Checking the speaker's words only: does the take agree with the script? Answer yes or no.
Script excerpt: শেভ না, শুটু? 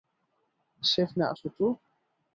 yes